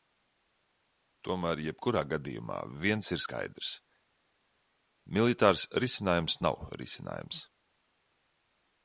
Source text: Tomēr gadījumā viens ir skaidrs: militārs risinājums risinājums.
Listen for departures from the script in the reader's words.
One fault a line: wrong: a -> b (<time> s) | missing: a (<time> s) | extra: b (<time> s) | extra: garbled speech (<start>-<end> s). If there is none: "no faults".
extra: jebkurā (1.6 s)
extra: nav (6.5 s)